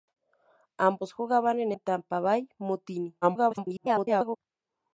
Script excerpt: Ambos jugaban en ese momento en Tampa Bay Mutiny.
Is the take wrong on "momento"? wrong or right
wrong